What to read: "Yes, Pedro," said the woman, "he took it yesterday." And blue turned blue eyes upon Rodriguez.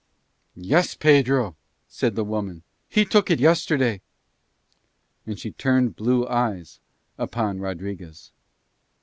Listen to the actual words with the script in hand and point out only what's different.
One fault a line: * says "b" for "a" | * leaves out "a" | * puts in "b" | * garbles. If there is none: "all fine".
* says "she" for "blue"